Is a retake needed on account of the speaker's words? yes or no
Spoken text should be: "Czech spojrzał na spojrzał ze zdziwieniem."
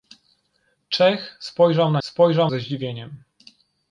no